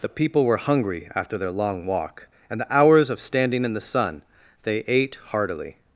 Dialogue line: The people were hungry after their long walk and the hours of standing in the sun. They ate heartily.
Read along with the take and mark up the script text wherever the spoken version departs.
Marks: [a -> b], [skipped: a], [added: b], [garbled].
The people were hungry after their long walk and the hours of standing in the sun. They ate heartily.